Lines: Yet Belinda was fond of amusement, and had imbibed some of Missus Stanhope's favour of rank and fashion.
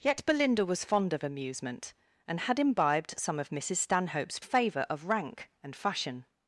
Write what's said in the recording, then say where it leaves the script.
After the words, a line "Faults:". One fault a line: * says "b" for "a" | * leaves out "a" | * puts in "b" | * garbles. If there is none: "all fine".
Yet Belinda was fond of amusement, and had imbibed some of Missus Stanhope's favour of rank and fashion.
Faults:
all fine